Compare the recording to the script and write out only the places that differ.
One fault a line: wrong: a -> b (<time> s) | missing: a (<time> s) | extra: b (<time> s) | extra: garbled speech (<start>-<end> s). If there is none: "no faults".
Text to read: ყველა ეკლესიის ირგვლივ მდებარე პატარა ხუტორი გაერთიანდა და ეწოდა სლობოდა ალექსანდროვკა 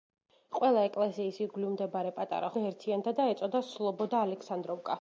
missing: ხუტორი (2.5 s)